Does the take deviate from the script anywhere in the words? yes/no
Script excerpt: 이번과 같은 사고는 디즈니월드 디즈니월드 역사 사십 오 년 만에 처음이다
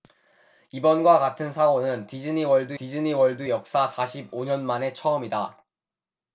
no